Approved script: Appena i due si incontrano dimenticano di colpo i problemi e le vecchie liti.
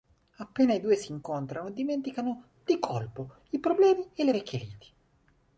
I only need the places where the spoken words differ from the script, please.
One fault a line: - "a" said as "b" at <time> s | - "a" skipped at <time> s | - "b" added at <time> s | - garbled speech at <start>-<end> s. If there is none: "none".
none